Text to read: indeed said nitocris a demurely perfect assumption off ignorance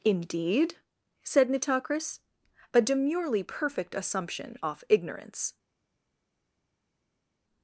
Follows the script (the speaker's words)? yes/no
yes